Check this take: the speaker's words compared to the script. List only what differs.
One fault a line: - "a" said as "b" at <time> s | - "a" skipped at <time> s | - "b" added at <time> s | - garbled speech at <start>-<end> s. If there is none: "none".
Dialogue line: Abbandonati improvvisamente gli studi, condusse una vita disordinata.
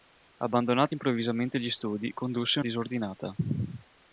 - "una vita" skipped at 2.6 s